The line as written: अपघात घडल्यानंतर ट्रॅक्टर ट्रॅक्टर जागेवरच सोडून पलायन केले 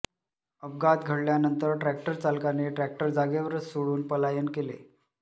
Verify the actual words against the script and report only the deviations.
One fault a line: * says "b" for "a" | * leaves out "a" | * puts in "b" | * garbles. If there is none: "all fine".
* puts in "चालकाने"